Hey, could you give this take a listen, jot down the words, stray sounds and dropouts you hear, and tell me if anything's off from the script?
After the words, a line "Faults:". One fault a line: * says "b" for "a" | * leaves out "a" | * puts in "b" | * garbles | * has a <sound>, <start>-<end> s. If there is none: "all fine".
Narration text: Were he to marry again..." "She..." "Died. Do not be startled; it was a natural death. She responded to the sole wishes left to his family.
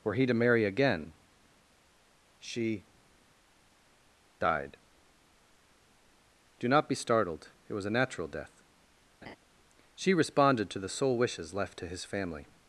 Were he to marry again..." "She..." "Died. Do not be startled; it was a natural death. She responded to the sole wishes left to his family.
Faults:
* has a laugh, 9.2-9.4 s